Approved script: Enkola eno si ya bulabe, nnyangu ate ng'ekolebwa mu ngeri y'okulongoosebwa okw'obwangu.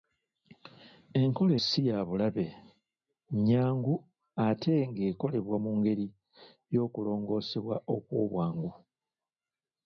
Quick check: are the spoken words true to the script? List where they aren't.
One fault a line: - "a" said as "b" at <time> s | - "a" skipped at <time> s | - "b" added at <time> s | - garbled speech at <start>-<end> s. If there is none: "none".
- "eno" skipped at 1.5 s